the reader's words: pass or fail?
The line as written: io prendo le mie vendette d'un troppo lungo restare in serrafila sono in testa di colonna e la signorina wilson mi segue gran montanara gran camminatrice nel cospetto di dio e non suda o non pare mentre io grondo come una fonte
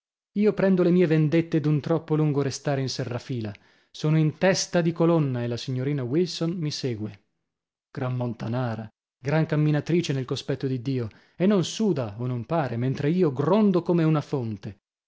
pass